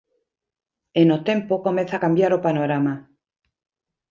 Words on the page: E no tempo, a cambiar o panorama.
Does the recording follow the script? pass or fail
fail